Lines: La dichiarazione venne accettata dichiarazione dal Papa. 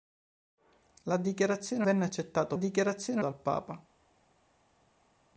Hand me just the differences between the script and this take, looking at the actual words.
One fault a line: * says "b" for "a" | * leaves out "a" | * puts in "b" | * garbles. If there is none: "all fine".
all fine